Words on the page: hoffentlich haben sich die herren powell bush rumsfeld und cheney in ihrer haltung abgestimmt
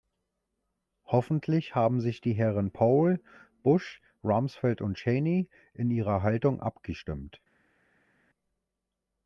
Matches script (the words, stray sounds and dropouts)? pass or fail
pass